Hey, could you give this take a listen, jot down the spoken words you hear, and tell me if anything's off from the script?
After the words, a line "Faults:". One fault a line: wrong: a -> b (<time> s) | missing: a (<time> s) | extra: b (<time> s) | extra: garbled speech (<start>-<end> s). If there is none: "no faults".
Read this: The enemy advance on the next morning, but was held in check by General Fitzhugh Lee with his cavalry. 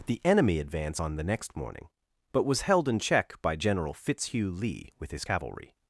The enemy advance on the next morning, but was held in check by General Fitzhugh Lee with his cavalry.
Faults:
no faults